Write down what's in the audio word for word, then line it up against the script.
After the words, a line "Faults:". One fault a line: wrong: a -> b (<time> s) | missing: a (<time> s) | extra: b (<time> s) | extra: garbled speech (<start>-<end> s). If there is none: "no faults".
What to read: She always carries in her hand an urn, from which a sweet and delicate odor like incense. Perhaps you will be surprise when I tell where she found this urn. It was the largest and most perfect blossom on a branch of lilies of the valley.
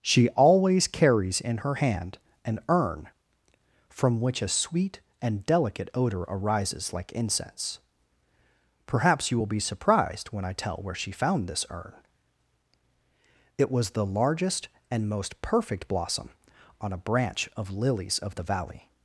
She always carries in her hand an urn, from which a sweet and delicate odor arises like incense. Perhaps you will be surprised when I tell where she found this urn. It was the largest and most perfect blossom on a branch of lilies of the valley.
Faults:
extra: arises (6.2 s)
wrong: surprise -> surprised (9.6 s)